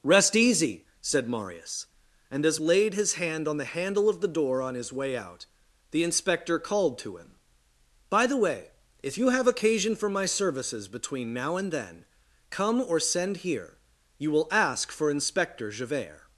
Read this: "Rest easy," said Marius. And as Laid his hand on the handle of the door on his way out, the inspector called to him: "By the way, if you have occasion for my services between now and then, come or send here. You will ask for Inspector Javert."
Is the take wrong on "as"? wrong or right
right